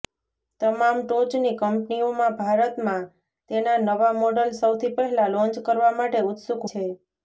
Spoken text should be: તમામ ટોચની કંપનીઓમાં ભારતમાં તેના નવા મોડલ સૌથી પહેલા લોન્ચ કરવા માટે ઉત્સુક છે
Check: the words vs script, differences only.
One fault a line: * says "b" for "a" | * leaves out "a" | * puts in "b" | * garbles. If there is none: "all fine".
all fine